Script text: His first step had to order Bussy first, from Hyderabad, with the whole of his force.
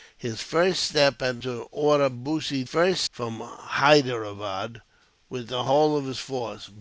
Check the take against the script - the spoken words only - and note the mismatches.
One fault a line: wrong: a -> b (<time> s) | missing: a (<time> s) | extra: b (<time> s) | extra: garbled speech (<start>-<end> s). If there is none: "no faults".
no faults